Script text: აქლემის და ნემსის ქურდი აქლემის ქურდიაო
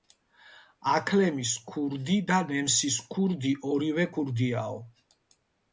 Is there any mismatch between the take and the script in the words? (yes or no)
yes